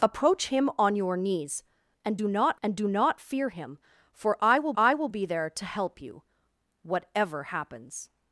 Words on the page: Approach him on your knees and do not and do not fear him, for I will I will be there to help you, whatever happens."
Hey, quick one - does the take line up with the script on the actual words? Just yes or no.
yes